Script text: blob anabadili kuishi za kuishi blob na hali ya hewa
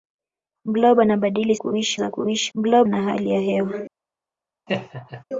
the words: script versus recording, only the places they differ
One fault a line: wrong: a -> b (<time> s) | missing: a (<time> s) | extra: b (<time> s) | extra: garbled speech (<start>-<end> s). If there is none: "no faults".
no faults